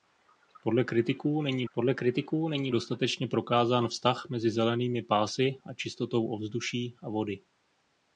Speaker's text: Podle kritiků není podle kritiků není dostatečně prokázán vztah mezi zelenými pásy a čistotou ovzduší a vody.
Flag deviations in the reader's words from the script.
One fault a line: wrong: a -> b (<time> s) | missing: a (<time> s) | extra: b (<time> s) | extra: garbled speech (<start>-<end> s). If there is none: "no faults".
no faults